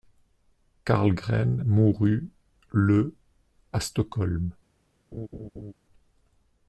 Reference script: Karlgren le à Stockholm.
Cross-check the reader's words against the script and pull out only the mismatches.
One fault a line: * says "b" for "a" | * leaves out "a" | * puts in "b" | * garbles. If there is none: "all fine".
* puts in "mourut"